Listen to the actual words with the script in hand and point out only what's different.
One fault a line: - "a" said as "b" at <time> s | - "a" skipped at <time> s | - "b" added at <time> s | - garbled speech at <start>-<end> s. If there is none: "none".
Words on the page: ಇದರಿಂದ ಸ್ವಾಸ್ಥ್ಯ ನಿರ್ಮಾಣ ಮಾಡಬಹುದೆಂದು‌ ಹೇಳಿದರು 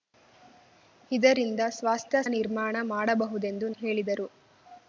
none